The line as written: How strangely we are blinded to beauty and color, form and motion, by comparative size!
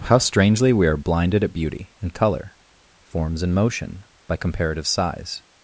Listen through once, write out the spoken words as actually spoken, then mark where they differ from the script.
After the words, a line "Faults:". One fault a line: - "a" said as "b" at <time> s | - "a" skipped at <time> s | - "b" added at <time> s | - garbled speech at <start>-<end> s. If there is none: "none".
How strangely we are blinded at beauty and color, forms and motion, by comparative size!
Faults:
- "to" said as "at" at 1.4 s
- "form" said as "forms" at 3.1 s